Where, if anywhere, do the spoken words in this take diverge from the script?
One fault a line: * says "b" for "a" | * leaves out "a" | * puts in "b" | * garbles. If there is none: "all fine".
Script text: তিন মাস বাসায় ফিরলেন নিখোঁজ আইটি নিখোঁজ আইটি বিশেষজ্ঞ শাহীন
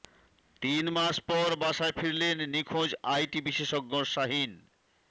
* puts in "পর"
* leaves out "নিখোঁজ আইটি"